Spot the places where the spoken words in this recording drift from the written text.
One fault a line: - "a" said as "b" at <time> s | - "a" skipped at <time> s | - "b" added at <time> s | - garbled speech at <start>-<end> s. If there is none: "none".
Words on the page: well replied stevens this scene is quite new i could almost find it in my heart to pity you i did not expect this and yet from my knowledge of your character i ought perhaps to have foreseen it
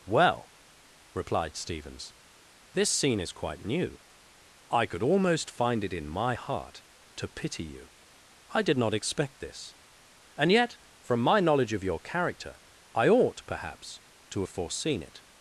none